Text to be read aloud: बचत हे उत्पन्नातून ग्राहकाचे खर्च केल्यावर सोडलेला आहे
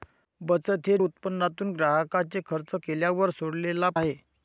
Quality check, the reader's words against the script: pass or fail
pass